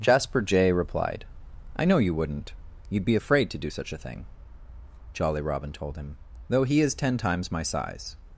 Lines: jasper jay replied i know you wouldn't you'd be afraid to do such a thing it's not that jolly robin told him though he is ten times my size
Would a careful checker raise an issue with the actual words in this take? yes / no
yes